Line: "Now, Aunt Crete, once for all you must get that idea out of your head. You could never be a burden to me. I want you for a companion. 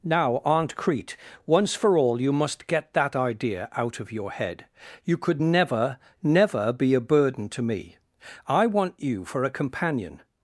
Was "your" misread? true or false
false